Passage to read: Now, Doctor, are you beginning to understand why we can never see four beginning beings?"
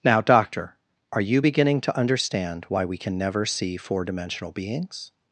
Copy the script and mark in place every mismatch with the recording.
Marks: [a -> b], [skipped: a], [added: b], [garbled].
Now, Doctor, are you beginning to understand why we can never see four [beginning -> dimensional] beings?"